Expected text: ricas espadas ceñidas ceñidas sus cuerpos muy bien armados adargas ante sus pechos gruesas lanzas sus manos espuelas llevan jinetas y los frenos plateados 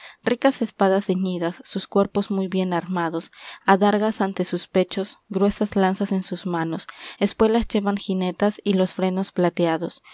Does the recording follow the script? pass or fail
fail